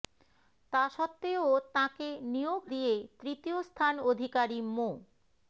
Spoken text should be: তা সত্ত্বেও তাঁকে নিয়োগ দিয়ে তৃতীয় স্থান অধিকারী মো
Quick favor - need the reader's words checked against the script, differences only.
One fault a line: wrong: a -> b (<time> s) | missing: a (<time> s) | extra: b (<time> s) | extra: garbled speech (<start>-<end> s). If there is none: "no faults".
no faults